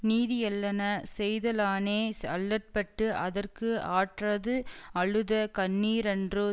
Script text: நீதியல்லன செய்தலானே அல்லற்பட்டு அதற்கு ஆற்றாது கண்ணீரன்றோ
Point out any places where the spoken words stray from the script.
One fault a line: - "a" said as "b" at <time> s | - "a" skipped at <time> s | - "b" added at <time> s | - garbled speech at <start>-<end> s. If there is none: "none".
- "அழுத" added at 4.9 s